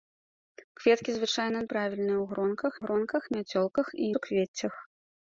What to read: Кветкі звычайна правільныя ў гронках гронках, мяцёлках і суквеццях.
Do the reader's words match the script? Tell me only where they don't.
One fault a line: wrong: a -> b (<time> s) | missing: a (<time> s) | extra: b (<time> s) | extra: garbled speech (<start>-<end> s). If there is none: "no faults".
no faults